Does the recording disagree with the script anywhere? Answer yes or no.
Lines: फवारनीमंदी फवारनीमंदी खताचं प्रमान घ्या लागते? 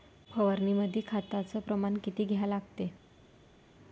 yes